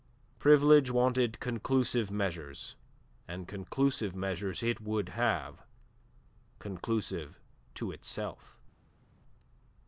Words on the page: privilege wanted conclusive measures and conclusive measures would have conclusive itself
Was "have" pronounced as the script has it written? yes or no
yes